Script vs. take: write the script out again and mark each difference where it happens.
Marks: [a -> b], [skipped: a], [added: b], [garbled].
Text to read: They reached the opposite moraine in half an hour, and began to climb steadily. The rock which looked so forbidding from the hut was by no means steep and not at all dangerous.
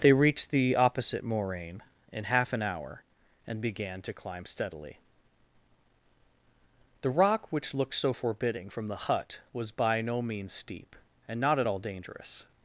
They reached the opposite moraine in half an hour, and began to climb steadily. The rock which looked so forbidding from the hut was by no means steep and not at all dangerous.